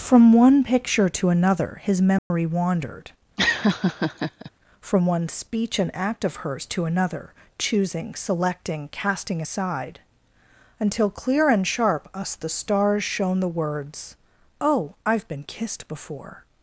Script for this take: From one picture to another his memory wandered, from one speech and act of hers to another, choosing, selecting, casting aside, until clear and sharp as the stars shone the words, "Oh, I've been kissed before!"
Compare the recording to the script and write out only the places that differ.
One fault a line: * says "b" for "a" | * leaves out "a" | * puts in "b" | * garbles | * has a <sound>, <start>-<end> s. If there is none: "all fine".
* has a dropout, 2.2-2.3 s
* has a laugh, 3.4-4.5 s
* says "us" for "as"